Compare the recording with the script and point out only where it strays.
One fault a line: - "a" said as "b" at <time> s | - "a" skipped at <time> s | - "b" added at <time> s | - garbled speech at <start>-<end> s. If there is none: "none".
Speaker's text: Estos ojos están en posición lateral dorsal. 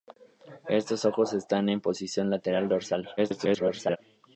- garbled speech at 3.2-4.0 s